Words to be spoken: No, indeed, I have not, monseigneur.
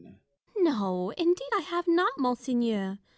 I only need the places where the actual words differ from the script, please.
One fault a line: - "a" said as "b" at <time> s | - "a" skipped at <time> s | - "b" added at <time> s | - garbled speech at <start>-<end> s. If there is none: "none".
none